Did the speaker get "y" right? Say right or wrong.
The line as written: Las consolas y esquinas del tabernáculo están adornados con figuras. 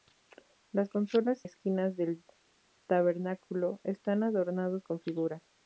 wrong